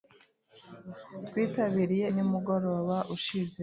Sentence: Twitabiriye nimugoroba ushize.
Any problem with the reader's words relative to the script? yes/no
no